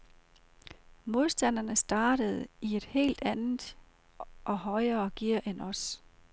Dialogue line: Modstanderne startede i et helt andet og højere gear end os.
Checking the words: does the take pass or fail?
pass